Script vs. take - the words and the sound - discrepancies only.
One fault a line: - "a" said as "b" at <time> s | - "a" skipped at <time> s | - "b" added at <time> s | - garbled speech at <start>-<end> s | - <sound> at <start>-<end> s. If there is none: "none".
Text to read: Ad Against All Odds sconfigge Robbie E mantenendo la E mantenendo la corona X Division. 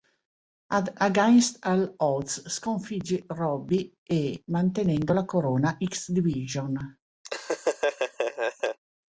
- "E mantenendo la" skipped at 5.3 s
- laugh at 7.2-8.8 s